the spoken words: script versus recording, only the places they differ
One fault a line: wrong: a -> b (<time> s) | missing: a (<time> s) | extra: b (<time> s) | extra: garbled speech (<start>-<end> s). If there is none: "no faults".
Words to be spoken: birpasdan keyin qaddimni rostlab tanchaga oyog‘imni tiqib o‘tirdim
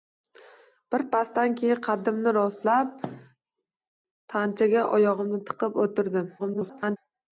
extra: garbled speech (6.4-7.0 s)